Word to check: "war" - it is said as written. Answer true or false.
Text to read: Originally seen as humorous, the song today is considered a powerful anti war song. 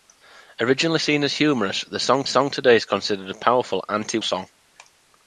false